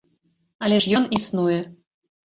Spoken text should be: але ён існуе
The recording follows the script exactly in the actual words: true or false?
false